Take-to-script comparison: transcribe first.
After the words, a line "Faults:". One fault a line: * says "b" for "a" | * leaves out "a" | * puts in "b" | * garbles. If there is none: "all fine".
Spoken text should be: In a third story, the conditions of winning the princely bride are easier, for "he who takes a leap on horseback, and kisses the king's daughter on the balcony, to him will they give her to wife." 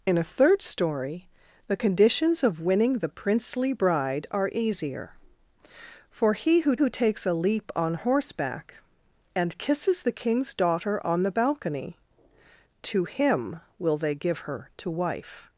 In a third story, the conditions of winning the princely bride are easier, for "he who who takes a leap on horseback, and kisses the king's daughter on the balcony, to him will they give her to wife."
Faults:
* puts in "who"